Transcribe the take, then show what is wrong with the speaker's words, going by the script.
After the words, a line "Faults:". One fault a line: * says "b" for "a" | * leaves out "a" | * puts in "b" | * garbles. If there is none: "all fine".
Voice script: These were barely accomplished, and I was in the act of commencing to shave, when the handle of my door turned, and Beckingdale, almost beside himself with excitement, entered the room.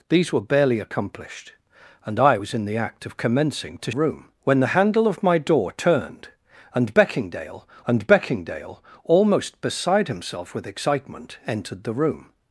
These were barely accomplished, and I was in the act of commencing to room, when the handle of my door turned, and Beckingdale and Beckingdale, almost beside himself with excitement, entered the room.
Faults:
* says "room" for "shave"
* puts in "and Beckingdale"